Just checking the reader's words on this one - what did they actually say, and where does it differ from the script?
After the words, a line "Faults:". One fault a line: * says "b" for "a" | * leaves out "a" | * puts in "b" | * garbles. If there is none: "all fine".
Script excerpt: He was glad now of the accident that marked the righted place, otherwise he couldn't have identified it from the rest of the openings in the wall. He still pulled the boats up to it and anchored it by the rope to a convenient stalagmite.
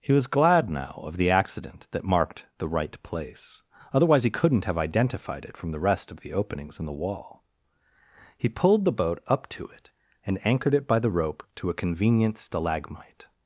He was glad now of the accident that marked the right place, otherwise he couldn't have identified it from the rest of the openings in the wall. He pulled the boat up to it and anchored it by the rope to a convenient stalagmite.
Faults:
* says "right" for "righted"
* leaves out "still"
* says "boat" for "boats"